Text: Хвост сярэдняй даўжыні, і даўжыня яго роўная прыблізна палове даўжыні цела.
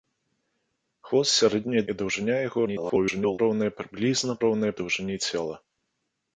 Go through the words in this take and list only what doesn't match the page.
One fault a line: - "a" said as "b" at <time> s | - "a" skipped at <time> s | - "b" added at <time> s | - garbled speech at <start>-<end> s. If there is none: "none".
- "даўжыні" skipped at 1.8 s
- garbled speech at 2.6-3.4 s
- "палове" said as "роўная" at 4.5 s